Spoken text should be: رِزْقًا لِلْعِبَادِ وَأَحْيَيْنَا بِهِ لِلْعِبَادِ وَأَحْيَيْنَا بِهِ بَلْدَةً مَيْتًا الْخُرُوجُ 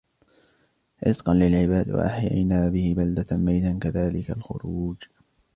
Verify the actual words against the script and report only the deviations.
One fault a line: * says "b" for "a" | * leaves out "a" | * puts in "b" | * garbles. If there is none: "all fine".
* leaves out "لِلْعِبَادِ وَأَحْيَيْنَا بِهِ"
* puts in "كَذَلِكَ"